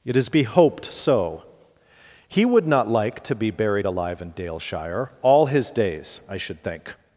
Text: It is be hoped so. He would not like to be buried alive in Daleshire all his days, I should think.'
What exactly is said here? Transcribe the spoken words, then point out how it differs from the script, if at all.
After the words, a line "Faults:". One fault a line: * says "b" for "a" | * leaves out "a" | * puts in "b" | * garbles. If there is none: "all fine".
It is be hoped so. He would not like to be buried alive in Daleshire all his days, I should think.'
Faults:
all fine